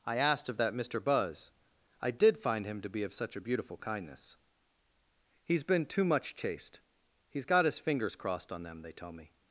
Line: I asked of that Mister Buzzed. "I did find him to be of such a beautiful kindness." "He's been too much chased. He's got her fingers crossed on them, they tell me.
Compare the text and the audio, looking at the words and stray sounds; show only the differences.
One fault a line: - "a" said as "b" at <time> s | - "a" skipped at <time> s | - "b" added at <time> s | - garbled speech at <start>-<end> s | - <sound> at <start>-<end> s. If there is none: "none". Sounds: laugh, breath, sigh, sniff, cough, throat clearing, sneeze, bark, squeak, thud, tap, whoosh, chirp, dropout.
- "Buzzed" said as "Buzz" at 1.0 s
- "her" said as "his" at 7.6 s